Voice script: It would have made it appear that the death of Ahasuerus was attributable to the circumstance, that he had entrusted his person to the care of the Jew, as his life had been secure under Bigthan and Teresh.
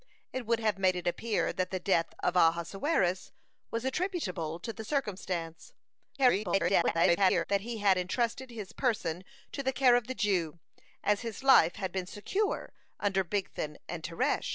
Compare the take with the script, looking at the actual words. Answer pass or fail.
fail